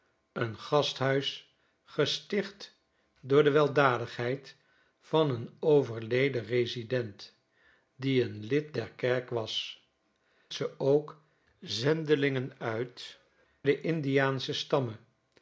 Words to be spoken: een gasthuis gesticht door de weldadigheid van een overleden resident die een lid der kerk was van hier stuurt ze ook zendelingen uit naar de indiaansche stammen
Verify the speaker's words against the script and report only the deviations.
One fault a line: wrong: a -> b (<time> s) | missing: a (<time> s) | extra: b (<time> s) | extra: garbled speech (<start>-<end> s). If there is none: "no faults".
missing: van hier stuurt (9.8 s)
missing: naar (13.2 s)